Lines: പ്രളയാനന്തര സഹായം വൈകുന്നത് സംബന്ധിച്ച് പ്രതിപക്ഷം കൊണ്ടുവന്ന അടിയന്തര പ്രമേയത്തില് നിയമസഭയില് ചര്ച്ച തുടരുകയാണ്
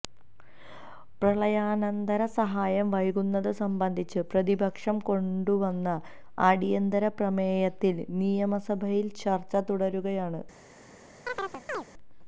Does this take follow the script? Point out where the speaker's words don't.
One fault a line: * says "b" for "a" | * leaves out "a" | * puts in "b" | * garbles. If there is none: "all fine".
all fine